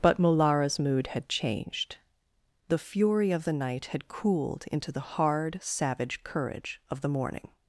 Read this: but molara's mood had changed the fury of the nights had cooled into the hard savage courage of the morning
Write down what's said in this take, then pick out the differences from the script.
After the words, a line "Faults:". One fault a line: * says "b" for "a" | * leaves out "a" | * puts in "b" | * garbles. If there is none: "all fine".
but molara's mood had changed the fury of the night had cooled into the hard savage courage of the morning
Faults:
* says "night" for "nights"